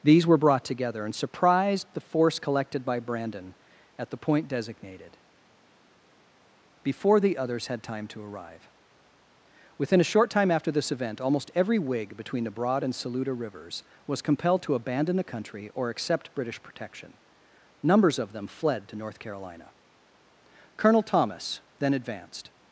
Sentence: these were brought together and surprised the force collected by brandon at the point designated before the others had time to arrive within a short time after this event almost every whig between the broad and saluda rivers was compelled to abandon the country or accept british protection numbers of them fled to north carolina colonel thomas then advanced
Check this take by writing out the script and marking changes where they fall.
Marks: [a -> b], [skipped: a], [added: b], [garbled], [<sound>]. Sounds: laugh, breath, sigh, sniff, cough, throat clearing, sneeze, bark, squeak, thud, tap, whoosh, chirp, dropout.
these were brought together and surprised the force collected by brandon at the point designated before the others had time to arrive within a short time after this event almost every whig between the broad and saluda rivers was compelled to abandon the country or accept british protection numbers of them fled to north carolina colonel thomas then advanced